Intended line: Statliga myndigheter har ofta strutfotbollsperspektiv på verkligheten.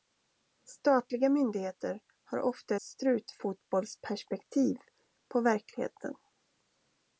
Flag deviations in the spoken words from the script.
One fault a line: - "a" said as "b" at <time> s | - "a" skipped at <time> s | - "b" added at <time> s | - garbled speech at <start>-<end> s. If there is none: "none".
none